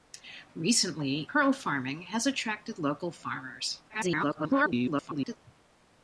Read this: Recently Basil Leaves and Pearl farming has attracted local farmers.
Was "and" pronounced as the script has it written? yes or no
no